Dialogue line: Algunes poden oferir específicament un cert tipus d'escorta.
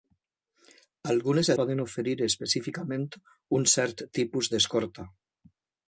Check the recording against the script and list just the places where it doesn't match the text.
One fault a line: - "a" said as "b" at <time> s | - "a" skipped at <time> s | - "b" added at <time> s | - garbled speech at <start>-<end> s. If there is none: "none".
none